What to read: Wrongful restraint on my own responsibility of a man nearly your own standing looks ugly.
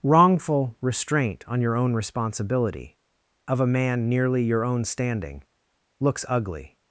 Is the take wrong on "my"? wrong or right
wrong